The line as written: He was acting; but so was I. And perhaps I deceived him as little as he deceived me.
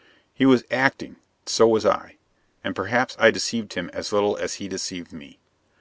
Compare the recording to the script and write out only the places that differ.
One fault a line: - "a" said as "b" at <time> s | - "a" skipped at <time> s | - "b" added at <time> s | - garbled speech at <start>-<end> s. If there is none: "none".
- "but" skipped at 1.2 s